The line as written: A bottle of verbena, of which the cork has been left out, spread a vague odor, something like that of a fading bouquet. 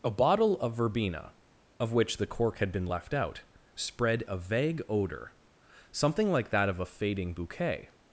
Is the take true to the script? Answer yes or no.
no